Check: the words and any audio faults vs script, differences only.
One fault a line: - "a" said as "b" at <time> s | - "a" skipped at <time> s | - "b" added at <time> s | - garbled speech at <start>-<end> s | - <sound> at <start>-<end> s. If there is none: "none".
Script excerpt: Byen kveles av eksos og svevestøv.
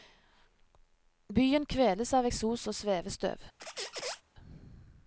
- squeak at 3.6-4.2 s